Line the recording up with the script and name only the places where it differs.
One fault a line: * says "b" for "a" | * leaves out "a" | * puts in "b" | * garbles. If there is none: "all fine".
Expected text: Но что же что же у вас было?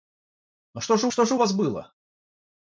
all fine